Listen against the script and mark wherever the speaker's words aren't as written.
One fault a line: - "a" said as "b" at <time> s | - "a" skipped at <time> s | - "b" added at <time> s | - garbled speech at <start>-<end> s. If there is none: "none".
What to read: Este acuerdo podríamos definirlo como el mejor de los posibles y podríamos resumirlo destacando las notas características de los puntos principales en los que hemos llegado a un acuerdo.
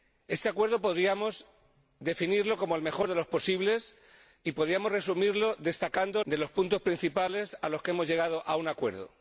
- "las notas características" skipped at 6.2 s